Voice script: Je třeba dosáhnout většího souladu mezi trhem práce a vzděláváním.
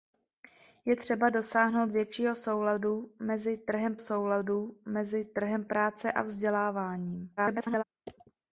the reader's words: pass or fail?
fail